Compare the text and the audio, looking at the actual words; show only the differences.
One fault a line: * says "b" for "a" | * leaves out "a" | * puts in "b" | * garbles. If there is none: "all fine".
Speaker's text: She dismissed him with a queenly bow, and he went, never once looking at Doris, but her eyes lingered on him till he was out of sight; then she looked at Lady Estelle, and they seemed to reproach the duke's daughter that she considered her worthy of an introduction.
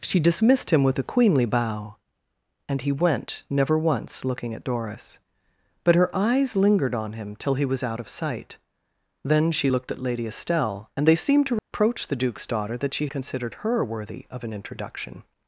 all fine